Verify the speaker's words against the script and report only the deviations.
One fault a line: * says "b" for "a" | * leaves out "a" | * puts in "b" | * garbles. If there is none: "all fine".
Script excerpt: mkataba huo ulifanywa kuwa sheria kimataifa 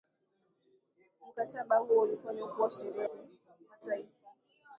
all fine